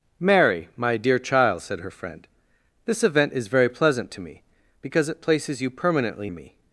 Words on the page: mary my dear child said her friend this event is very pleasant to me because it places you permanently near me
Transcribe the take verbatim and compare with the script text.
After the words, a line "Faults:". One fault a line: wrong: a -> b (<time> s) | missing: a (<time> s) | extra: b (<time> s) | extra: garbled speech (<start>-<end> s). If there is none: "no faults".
mary my dear child said her friend this event is very pleasant to me because it places you permanently me
Faults:
missing: near (6.3 s)